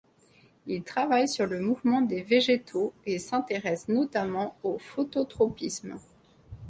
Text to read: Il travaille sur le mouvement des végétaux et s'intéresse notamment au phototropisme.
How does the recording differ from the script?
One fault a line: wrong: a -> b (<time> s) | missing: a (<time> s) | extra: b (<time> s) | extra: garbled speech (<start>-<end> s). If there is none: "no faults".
no faults